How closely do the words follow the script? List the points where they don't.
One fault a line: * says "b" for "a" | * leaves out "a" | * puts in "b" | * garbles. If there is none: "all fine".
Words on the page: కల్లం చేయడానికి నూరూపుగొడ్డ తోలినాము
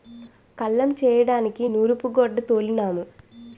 all fine